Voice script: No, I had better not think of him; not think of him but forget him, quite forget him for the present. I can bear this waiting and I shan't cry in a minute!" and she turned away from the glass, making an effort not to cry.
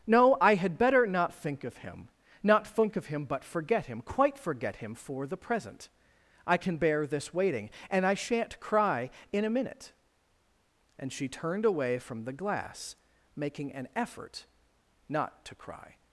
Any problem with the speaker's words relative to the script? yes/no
no